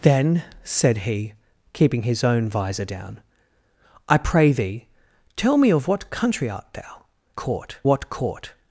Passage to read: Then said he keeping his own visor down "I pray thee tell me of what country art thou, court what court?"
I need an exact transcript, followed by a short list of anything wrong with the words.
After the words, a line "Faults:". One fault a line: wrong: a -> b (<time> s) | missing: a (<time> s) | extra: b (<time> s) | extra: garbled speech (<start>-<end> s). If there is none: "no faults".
Then said he keeping his own visor down "I pray thee tell me of what country art thou, court what court?"
Faults:
no faults